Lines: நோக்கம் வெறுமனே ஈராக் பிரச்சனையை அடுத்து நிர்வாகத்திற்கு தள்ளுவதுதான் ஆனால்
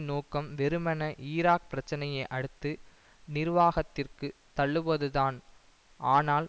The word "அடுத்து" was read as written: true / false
true